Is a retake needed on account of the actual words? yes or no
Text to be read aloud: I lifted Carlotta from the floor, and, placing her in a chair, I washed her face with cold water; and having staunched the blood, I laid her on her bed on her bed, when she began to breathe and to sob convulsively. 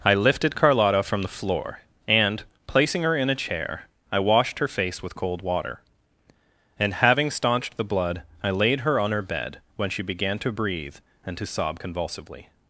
yes